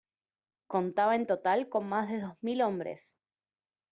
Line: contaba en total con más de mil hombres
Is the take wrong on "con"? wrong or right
right